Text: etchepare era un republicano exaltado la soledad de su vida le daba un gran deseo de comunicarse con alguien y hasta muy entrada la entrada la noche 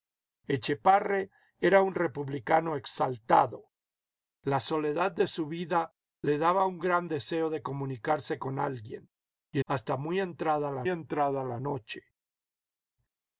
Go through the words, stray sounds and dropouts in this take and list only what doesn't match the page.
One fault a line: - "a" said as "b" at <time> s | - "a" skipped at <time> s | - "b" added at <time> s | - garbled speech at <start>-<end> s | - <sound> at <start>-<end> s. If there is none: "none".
none